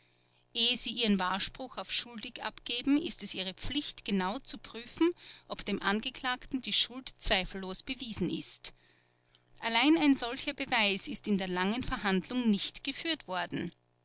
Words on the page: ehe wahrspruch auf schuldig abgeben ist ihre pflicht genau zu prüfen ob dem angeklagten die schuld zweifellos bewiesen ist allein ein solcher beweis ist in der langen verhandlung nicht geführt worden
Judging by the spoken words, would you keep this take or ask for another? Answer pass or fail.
fail